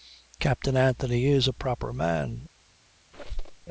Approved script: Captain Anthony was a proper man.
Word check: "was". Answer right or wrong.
wrong